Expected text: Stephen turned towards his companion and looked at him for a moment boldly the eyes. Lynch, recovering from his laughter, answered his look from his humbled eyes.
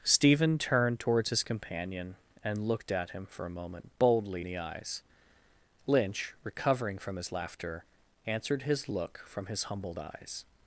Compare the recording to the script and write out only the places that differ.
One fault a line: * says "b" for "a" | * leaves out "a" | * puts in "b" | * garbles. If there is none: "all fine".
all fine